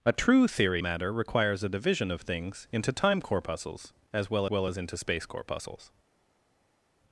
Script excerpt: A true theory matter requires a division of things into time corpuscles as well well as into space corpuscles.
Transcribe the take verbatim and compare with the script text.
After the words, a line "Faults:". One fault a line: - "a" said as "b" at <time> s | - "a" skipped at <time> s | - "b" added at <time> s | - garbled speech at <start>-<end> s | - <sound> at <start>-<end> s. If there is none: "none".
A true theory matter requires a division of things into time corpuscles as well well as into space corpuscles.
Faults:
none